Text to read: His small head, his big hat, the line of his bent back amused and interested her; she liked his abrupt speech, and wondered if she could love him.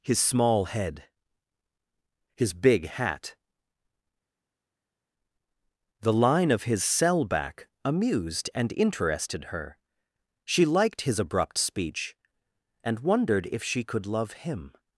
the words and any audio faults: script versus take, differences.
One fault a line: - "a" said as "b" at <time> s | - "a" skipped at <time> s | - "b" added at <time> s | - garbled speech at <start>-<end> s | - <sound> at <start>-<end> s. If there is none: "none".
- "bent" said as "cell" at 6.8 s